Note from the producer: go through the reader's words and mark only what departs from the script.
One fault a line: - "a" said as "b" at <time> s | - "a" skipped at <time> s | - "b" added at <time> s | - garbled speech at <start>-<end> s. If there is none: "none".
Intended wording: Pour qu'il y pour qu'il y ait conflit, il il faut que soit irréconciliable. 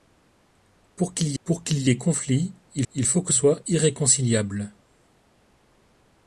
none